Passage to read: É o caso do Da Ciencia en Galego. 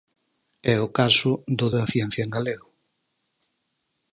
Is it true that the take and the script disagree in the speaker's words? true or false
false